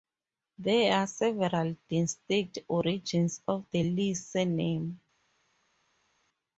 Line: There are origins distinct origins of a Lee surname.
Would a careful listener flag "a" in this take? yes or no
yes